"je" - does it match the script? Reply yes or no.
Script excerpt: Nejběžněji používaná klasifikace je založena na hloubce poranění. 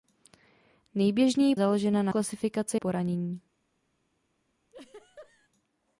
no